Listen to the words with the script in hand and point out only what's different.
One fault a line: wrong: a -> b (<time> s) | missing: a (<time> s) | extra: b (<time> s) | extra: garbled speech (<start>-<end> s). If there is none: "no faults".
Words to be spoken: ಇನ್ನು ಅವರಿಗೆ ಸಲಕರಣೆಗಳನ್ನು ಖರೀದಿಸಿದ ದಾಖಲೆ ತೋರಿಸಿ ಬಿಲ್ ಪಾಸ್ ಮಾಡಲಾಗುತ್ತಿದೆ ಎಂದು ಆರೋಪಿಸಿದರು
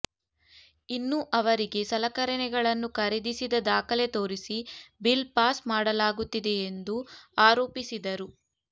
no faults